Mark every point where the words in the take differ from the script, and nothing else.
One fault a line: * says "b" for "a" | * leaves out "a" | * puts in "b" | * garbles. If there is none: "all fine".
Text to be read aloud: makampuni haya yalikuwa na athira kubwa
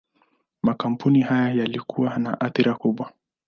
all fine